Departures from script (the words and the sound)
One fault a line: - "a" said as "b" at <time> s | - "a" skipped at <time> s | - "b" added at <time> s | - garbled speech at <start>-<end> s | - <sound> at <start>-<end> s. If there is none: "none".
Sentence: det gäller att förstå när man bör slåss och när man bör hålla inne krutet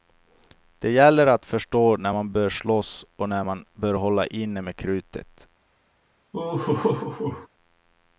- "med" added at 4.6 s
- laugh at 6.3-7.5 s